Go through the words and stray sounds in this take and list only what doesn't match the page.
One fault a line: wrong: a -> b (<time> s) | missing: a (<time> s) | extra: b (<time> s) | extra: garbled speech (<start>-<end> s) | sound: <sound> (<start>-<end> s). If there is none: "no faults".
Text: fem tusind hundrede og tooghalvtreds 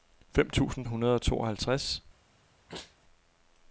sound: sneeze (2.7-3.0 s)